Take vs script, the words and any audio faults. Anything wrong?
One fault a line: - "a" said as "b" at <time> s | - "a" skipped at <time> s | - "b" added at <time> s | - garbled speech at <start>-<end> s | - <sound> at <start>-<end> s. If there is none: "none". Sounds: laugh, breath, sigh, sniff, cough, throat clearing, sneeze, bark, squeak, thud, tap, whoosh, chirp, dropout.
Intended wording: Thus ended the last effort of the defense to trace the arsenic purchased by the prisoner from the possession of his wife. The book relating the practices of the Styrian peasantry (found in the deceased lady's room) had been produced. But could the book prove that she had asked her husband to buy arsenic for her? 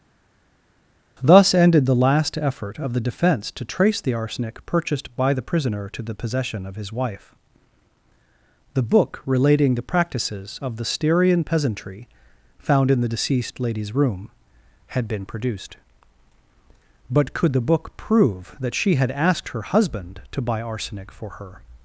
- "from" said as "to" at 5.9 s